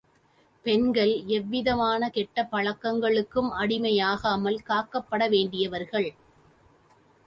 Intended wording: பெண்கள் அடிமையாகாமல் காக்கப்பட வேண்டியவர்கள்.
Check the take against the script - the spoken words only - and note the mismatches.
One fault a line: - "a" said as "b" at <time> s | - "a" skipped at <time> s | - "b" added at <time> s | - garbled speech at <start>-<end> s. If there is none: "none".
- "எவ்விதமான கெட்ட பழக்கங்களுக்கும்" added at 1.3 s